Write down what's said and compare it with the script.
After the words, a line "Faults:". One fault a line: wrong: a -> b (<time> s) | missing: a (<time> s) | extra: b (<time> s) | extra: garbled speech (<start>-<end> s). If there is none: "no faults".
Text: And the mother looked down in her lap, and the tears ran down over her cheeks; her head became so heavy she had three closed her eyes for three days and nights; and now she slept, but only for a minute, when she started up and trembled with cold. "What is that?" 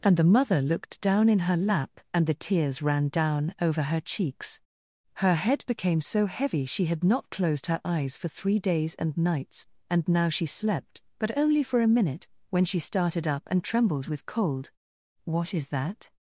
And the mother looked down in her lap, and the tears ran down over her cheeks; her head became so heavy she had not closed her eyes for three days and nights; and now she slept, but only for a minute, when she started up and trembled with cold. "What is that?"
Faults:
wrong: three -> not (7.0 s)